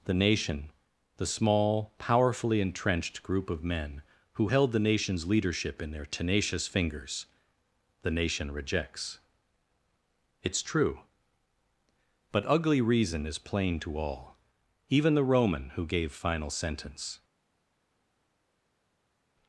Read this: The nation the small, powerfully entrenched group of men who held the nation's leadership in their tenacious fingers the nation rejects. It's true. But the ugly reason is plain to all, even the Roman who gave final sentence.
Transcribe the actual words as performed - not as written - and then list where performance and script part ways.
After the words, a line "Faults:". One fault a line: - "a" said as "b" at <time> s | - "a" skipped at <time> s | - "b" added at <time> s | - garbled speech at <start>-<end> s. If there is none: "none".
The nation the small, powerfully entrenched group of men who held the nation's leadership in their tenacious fingers the nation rejects. It's true. But ugly reason is plain to all, even the Roman who gave final sentence.
Faults:
- "the" skipped at 12.4 s